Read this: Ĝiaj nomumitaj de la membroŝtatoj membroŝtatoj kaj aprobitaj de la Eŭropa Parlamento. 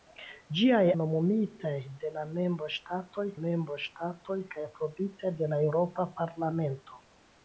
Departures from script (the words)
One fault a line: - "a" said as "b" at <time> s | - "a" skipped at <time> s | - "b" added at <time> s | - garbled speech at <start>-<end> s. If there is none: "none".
none